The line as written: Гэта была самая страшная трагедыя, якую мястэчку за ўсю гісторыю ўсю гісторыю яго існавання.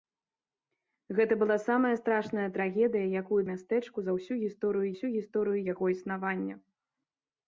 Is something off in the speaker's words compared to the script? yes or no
no